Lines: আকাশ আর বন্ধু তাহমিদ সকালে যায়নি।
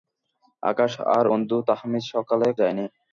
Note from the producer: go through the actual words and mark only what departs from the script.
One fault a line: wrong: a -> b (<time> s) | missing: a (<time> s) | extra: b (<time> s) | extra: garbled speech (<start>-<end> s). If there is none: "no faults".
no faults